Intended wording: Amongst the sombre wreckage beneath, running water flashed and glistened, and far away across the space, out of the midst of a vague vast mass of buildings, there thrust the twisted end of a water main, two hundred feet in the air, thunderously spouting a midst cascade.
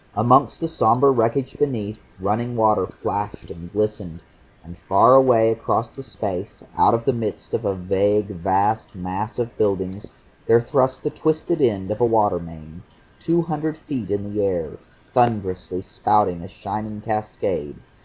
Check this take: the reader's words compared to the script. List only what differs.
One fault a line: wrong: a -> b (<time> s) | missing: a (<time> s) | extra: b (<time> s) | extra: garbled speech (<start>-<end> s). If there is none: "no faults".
wrong: midst -> shining (16.5 s)